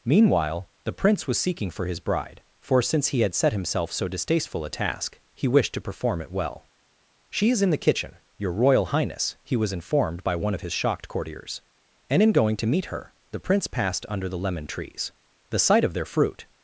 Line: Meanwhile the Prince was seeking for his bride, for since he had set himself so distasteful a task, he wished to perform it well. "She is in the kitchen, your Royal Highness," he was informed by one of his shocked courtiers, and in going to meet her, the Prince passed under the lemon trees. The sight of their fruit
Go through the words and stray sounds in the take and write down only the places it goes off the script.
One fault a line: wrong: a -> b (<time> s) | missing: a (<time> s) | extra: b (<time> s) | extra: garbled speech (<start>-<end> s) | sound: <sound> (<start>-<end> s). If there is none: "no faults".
no faults